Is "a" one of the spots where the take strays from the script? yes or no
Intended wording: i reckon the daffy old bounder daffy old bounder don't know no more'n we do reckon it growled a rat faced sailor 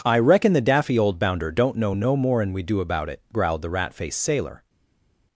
yes